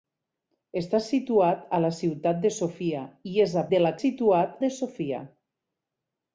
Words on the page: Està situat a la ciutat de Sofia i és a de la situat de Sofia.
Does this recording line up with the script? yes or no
yes